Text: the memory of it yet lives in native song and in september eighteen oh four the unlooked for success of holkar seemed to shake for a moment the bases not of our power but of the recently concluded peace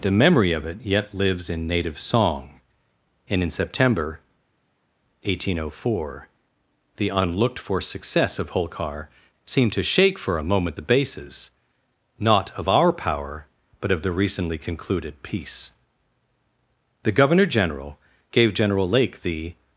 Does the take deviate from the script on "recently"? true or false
false